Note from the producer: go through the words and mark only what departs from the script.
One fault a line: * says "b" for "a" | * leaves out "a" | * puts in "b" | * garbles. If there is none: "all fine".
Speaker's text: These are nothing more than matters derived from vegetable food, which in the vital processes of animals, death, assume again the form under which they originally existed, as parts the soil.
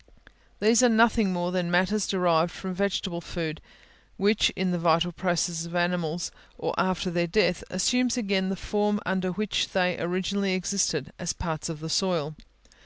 * puts in "or after their"
* puts in "of"